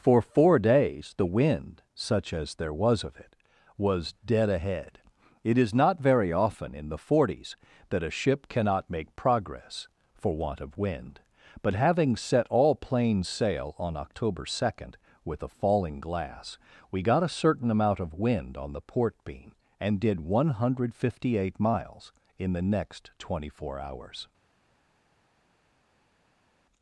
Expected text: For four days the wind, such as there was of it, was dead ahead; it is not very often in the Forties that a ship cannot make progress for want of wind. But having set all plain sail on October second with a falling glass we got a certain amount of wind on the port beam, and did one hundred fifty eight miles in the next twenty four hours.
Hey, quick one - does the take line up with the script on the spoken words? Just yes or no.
yes